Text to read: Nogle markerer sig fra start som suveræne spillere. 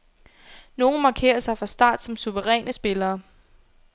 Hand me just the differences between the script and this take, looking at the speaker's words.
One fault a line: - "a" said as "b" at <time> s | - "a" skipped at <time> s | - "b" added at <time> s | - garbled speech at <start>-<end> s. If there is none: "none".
none